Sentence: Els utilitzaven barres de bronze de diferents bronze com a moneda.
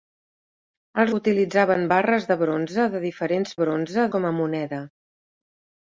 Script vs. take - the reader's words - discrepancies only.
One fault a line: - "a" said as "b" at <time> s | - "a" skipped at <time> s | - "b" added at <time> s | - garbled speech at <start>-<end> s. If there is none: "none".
none